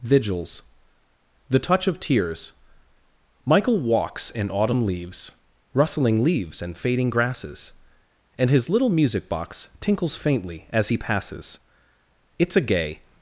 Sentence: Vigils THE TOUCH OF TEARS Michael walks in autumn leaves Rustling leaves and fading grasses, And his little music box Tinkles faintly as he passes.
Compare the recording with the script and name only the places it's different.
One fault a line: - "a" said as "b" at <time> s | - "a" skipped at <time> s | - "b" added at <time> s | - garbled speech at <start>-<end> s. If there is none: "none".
- "It's a gay" added at 12.4 s